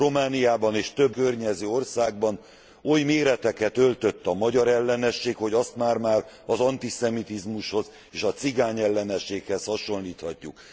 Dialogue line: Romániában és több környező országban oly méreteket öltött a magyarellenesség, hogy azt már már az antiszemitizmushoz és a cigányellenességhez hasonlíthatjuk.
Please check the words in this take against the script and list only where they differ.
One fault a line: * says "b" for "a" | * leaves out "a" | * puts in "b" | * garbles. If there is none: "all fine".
all fine